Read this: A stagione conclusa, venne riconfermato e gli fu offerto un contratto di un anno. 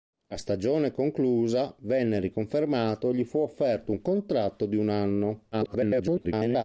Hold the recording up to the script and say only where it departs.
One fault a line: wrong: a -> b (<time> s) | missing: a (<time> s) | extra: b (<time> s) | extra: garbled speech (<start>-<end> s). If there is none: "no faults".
extra: garbled speech (5.5-6.6 s)